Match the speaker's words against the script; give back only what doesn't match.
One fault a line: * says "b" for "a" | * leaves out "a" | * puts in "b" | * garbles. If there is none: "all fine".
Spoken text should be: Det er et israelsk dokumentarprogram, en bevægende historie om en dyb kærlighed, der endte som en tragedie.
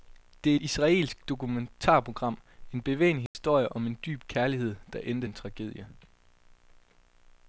* leaves out "som"